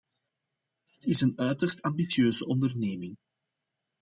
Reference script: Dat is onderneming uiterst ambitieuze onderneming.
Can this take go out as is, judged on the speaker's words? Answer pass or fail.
fail